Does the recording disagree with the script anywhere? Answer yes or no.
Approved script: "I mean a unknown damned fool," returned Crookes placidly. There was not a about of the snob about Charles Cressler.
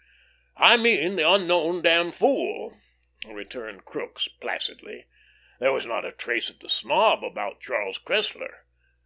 yes